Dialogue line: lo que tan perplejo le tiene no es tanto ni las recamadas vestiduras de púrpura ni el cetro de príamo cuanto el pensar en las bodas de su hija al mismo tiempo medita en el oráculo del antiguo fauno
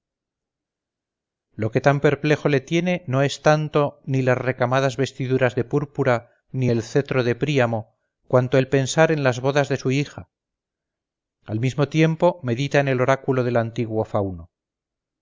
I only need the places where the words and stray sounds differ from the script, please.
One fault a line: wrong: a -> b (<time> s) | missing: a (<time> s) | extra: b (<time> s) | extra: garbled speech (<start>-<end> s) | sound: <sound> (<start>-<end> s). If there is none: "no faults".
no faults